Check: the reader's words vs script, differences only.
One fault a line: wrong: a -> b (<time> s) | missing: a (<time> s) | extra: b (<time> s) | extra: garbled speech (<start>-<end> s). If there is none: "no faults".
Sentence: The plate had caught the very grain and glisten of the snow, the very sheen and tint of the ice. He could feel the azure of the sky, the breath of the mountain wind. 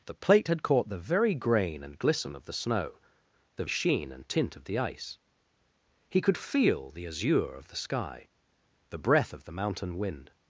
missing: very (3.6 s)